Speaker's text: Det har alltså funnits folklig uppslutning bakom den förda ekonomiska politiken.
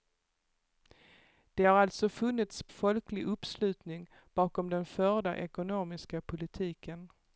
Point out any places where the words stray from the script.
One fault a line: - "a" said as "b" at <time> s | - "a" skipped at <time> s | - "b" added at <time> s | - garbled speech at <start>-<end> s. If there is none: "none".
none